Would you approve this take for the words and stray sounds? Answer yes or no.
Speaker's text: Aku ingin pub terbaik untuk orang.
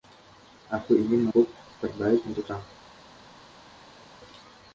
yes